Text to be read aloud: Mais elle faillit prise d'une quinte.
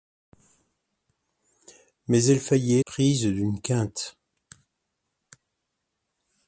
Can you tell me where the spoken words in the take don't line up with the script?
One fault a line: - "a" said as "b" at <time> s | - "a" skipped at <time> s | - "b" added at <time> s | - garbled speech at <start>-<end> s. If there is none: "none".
none